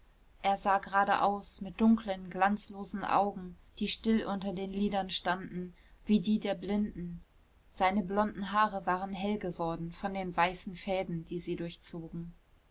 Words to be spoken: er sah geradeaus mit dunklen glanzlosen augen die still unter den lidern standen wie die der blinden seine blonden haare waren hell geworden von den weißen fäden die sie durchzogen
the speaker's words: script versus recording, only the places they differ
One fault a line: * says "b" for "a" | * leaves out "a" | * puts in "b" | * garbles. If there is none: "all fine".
all fine